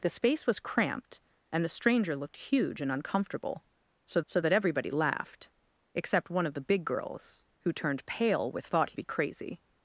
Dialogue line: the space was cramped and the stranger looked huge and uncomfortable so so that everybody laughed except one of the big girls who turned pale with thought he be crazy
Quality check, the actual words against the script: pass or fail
pass